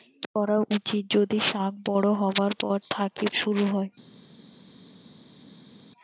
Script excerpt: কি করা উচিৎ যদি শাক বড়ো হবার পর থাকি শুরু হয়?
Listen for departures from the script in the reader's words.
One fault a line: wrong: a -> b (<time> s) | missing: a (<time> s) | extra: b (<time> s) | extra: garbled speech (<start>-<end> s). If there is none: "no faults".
no faults